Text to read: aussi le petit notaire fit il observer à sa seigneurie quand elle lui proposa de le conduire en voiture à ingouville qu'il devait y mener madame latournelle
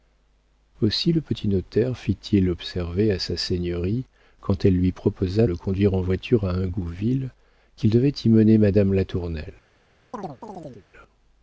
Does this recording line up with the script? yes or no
no